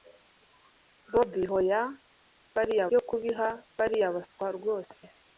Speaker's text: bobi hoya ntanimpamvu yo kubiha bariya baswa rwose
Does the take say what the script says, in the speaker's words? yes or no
no